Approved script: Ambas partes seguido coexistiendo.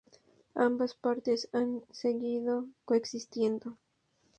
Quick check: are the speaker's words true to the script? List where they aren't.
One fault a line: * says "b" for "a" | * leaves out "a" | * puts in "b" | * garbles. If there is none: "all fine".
* puts in "han"